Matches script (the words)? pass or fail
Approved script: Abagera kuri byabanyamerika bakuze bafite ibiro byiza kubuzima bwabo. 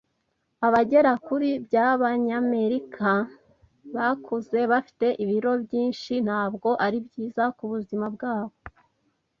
fail